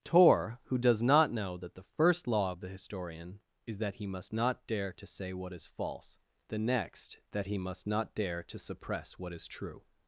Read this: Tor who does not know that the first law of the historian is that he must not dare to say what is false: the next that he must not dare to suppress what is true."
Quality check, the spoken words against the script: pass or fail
pass